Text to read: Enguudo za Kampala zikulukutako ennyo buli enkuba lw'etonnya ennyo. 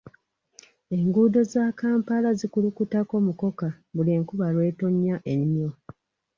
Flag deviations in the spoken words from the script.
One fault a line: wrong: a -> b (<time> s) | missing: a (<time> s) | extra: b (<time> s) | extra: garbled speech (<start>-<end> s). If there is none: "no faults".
wrong: ennyo -> mukoka (3.3 s)